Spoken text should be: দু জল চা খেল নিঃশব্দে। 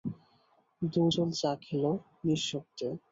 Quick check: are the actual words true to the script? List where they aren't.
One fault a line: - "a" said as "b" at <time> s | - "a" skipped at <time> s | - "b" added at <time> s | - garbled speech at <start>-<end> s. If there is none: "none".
none